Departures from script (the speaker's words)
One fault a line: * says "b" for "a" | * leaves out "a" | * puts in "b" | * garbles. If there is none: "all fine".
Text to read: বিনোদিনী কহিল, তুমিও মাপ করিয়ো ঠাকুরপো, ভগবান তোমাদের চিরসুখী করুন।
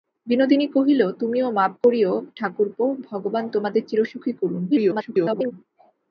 * garbles